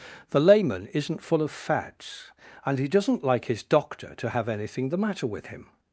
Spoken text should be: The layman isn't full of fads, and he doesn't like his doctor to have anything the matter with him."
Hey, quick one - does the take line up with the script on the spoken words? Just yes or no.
yes